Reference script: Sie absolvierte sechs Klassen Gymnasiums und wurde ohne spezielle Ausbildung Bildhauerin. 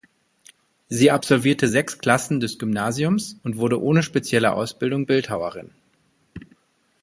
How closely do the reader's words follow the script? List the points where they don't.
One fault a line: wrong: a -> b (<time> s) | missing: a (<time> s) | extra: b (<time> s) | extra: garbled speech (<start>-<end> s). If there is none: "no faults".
extra: des (2.4 s)